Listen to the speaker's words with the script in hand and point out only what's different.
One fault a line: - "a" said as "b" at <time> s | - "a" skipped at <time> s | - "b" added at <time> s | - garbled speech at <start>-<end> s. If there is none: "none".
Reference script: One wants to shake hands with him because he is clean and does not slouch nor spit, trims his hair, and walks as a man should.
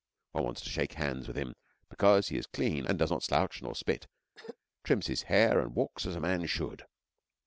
none